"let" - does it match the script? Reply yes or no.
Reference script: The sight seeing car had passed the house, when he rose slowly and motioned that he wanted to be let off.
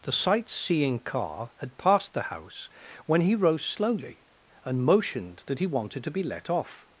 yes